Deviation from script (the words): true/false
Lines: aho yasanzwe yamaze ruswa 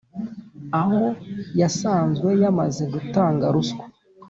true